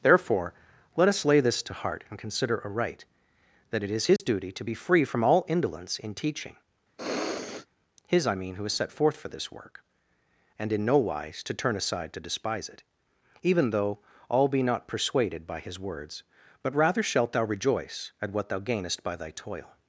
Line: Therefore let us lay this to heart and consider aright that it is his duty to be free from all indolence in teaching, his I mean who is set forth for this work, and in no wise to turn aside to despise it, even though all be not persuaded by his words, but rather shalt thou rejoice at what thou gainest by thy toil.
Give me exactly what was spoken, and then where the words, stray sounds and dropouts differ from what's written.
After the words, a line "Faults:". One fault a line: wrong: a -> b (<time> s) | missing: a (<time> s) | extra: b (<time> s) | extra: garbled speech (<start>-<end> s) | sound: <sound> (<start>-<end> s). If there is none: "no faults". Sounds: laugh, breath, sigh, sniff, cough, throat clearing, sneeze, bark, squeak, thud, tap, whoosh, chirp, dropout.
Therefore let us lay this to heart and consider aright that it is his duty to be free from all indolence in teaching, his I mean who is set forth for this work, and in no wise to turn aside to despise it, even though all be not persuaded by his words, but rather shalt thou rejoice at what thou gainest by thy toil.
Faults:
sound: dropout (4.2-4.2 s)
sound: sniff (7.0-7.7 s)